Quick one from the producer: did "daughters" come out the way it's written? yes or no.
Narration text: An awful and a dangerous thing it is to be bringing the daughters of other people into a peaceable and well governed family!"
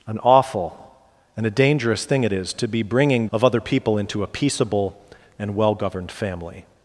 no